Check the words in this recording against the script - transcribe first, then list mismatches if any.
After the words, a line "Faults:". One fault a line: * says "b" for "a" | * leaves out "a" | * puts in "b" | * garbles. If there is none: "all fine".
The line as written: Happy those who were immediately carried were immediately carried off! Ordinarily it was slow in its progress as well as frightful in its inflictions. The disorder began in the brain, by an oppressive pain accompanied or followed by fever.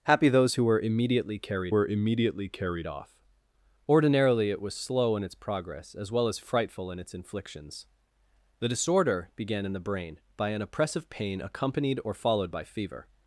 Happy those who were immediately carried were immediately carried off! Ordinarily it was slow in its progress as well as frightful in its inflictions. The disorder began in the brain, by an oppressive pain accompanied or followed by fever.
Faults:
all fine